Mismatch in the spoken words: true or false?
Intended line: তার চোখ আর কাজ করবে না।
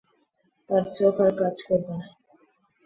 false